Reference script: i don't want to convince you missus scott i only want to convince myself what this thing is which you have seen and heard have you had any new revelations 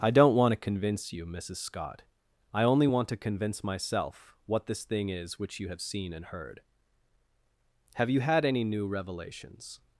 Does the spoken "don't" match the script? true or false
true